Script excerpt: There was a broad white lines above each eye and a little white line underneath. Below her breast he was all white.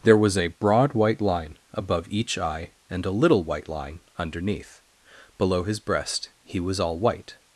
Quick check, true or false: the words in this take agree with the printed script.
false